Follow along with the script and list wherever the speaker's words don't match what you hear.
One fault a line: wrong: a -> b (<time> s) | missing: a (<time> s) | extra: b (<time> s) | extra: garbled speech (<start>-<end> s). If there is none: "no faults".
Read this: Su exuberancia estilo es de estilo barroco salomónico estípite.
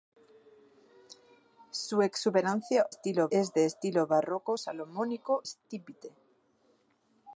no faults